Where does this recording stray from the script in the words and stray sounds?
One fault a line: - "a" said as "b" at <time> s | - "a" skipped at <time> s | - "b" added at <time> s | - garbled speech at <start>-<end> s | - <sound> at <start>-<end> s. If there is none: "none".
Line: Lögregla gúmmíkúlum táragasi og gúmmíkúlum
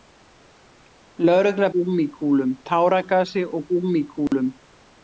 - dropout at 4.3-4.3 s